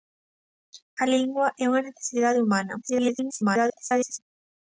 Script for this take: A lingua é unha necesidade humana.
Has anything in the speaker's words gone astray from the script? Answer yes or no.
yes